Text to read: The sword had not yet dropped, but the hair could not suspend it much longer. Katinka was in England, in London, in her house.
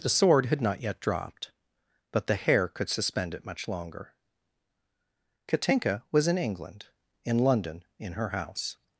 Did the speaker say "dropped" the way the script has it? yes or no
yes